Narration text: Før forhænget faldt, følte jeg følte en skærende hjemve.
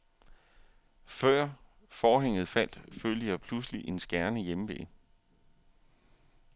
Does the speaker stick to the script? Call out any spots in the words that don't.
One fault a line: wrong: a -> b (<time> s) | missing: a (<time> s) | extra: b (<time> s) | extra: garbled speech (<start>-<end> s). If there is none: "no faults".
wrong: følte -> pludselig (3.4 s)